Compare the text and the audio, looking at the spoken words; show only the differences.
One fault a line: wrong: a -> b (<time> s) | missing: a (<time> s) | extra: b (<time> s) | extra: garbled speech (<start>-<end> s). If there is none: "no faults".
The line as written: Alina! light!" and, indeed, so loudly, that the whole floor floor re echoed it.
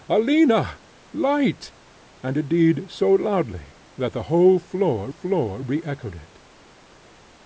no faults